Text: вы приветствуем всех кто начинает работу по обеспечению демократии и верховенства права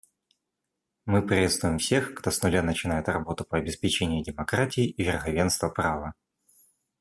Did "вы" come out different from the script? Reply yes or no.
yes